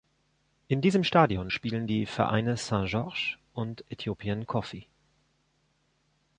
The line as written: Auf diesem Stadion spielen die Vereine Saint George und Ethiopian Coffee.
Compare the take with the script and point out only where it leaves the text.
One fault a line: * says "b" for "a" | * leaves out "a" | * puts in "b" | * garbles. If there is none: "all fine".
* says "In" for "Auf"